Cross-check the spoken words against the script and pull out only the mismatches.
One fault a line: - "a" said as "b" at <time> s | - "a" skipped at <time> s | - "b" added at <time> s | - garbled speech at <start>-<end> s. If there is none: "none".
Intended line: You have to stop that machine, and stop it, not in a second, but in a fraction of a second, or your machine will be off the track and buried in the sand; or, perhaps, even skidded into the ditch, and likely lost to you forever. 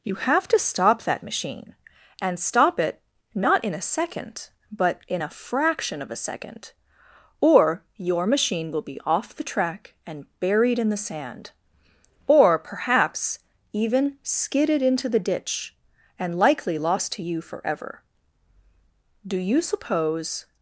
- "Do you suppose" added at 19.3 s